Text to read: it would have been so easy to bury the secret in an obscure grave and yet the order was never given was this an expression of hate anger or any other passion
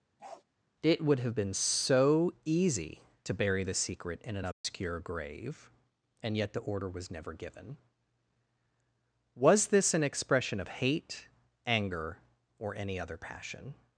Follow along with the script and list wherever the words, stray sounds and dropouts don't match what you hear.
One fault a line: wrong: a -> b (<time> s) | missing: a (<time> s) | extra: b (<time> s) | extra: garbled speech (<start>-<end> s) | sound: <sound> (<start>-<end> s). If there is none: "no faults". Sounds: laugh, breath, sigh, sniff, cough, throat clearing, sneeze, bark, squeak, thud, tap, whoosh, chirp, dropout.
sound: bark (0.2-0.4 s)
sound: dropout (4.5-4.6 s)